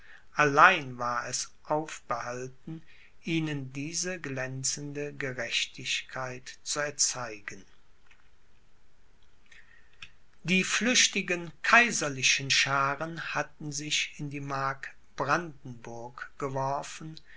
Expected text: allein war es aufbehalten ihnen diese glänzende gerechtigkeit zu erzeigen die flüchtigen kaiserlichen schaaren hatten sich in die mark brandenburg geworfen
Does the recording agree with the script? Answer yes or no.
yes